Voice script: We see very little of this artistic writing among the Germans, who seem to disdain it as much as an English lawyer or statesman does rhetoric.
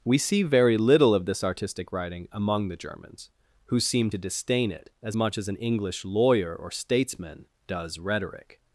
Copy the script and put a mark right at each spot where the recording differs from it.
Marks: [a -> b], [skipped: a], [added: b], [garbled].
We see very little of this artistic writing among the Germans, who seem to disdain it as much as an English lawyer or statesman does rhetoric.